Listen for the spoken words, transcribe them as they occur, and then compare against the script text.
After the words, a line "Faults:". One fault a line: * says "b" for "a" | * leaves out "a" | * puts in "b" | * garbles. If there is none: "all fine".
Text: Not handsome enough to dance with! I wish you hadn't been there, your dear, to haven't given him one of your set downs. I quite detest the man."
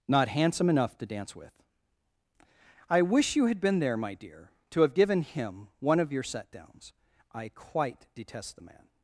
Not handsome enough to dance with! I wish you had been there, my dear, to have given him one of your set downs. I quite detest the man."
Faults:
* says "had" for "hadn't"
* says "my" for "your"
* says "have" for "haven't"